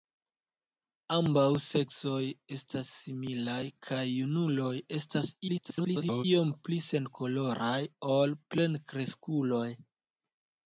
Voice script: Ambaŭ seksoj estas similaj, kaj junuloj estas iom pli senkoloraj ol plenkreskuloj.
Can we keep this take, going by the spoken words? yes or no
no